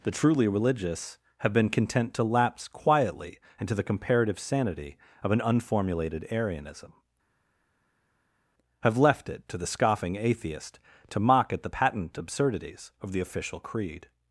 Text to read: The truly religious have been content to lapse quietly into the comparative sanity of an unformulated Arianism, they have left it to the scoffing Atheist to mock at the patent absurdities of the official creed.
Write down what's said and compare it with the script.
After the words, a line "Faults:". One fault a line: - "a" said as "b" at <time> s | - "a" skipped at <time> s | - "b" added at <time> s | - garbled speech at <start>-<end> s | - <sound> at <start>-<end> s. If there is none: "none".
The truly religious have been content to lapse quietly into the comparative sanity of an unformulated Arianism, have left it to the scoffing Atheist to mock at the patent absurdities of the official creed.
Faults:
- "they" skipped at 6.9 s